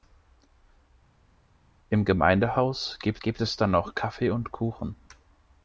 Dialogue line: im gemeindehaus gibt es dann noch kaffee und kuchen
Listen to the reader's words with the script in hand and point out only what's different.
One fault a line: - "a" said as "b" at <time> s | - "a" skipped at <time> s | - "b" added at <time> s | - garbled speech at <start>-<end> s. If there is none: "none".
- "gibt" added at 3.2 s